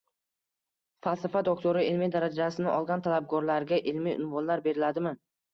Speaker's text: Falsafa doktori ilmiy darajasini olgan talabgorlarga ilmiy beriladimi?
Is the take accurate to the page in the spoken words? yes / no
no